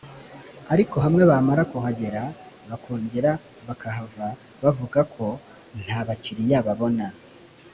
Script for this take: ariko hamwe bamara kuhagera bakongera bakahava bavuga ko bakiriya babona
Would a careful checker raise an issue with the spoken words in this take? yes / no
yes